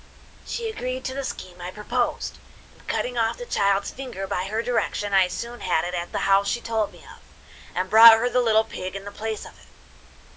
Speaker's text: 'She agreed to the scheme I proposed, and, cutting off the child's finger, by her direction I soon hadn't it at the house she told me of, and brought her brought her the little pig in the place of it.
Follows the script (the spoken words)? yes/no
no